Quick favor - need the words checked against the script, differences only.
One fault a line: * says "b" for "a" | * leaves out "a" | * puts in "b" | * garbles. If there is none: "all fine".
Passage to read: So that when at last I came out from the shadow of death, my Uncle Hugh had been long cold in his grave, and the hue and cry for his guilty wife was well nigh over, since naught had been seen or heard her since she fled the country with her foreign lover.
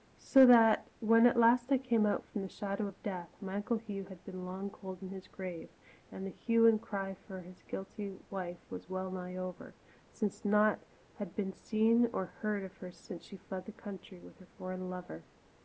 * puts in "of"